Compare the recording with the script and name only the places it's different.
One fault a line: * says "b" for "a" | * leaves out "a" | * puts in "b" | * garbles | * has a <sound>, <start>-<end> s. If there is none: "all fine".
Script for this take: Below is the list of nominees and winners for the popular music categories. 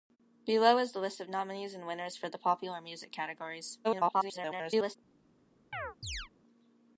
* garbles
* has a chirp, 5.7-6.3 s